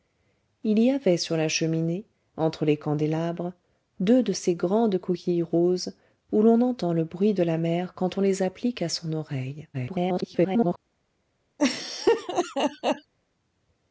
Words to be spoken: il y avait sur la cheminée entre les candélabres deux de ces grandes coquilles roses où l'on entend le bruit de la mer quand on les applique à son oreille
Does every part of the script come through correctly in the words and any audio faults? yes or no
no